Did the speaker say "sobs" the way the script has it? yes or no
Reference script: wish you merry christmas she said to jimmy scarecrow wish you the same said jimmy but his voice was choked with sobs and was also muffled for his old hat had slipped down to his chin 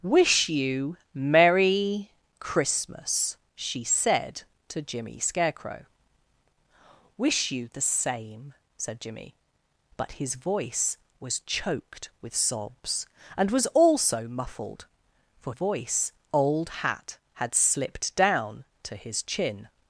yes